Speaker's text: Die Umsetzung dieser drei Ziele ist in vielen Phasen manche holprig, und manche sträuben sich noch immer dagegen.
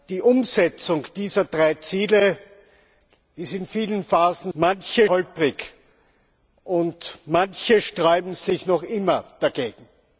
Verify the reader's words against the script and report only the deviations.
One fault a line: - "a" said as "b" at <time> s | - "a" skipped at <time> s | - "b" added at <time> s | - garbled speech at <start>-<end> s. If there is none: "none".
none